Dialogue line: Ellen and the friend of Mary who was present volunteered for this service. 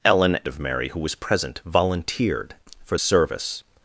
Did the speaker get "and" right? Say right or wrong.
wrong